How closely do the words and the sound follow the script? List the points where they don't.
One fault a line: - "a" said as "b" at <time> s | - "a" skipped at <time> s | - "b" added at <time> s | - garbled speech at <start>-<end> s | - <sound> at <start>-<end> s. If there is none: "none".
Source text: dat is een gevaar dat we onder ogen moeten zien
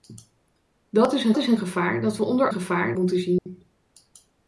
- "is een" added at 1.4 s
- "ogen" said as "gevaar" at 2.5 s
- dropout at 3.4-3.5 s